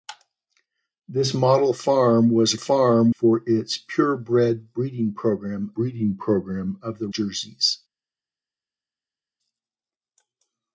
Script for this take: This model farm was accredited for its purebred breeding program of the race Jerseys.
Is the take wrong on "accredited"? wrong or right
wrong